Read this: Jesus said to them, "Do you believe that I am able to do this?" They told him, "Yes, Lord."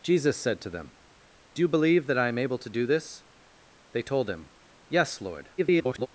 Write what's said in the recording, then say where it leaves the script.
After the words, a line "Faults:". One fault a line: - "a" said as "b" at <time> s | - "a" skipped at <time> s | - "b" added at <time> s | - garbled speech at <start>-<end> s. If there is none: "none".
Jesus said to them, "Do you believe that I am able to do this?" They told him, "Yes, Lord." [garbled]
Faults:
- garbled speech at 5.6-6.1 s